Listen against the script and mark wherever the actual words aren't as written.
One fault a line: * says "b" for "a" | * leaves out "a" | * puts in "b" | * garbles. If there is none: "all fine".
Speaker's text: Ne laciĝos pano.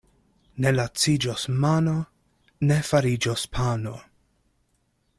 * puts in "mano ne fariĝos"